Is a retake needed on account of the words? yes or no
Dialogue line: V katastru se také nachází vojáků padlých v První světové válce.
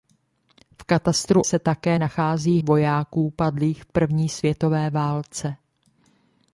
no